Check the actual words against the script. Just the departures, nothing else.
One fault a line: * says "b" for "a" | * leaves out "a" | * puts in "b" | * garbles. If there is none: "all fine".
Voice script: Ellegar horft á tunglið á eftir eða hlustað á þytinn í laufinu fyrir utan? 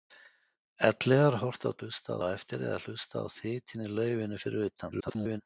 * says "hlustað" for "tunglið"
* garbles